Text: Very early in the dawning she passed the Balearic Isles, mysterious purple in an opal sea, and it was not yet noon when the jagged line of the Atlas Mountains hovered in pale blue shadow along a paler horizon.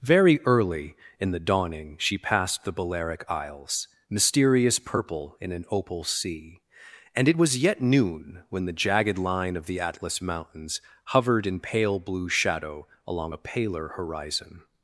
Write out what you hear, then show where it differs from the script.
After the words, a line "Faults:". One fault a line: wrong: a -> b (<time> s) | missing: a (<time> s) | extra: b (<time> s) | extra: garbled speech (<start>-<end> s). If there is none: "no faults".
Very early in the dawning she passed the Balearic Isles, mysterious purple in an opal sea, and it was yet noon when the jagged line of the Atlas Mountains hovered in pale blue shadow along a paler horizon.
Faults:
missing: not (7.6 s)